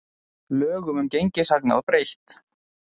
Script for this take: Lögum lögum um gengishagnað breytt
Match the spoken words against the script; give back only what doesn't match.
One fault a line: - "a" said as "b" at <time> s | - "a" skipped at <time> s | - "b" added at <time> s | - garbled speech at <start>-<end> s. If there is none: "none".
- "lögum" skipped at 1.0 s